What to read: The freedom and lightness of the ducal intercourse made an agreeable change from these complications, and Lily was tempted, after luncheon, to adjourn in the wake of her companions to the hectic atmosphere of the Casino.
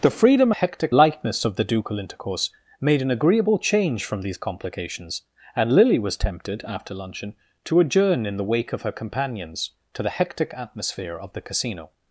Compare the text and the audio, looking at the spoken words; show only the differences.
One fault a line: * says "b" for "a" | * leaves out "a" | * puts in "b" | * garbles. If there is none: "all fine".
* says "hectic" for "and"